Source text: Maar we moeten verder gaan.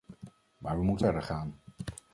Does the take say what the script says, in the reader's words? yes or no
yes